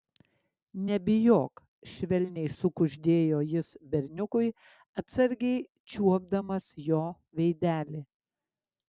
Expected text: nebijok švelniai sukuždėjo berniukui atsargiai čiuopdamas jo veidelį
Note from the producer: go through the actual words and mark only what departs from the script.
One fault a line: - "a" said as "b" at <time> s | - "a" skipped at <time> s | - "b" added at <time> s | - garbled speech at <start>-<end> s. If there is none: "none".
- "jis" added at 3.5 s